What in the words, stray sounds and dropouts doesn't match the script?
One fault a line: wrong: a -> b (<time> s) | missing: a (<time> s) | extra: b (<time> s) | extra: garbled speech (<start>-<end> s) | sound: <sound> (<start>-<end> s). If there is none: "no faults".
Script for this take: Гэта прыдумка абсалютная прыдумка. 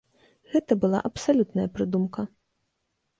wrong: прыдумка -> была (0.8 s)